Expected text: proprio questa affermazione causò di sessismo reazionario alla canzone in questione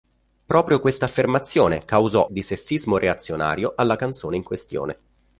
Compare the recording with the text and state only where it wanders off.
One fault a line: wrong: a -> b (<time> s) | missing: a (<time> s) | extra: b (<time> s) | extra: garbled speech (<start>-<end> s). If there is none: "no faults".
no faults